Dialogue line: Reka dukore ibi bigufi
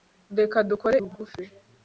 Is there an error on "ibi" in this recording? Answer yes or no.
yes